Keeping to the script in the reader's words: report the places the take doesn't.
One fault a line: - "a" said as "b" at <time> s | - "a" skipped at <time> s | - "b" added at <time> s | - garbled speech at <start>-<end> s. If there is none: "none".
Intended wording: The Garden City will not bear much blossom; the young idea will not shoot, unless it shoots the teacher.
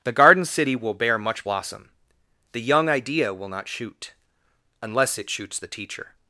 - "not" skipped at 0.9 s